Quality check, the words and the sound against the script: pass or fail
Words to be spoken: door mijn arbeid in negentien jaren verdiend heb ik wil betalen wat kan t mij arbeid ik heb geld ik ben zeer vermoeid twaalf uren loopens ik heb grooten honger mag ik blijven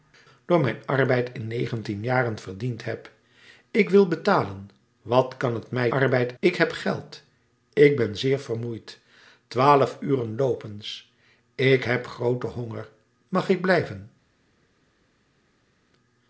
pass